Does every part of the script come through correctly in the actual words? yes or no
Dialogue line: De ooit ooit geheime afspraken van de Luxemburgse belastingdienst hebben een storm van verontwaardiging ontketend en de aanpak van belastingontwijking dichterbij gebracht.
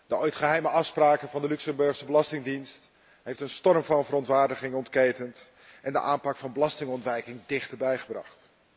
no